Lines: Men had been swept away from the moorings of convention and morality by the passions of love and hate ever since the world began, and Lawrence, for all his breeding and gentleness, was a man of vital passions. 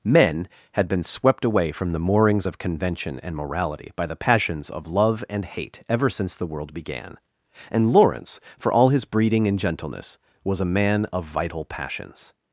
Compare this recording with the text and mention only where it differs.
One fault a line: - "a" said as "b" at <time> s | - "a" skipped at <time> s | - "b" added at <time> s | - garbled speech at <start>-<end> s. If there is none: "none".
none